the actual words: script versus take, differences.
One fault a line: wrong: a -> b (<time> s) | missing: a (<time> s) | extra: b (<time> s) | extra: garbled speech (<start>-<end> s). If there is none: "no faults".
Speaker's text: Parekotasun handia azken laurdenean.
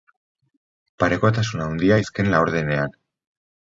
no faults